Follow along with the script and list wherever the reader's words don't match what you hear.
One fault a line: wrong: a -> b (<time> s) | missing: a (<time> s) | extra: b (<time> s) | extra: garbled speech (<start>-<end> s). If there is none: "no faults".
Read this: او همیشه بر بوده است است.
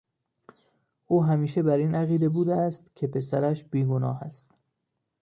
extra: این عقیده (1.8 s)
extra: که پسرش بیگناه (3.0 s)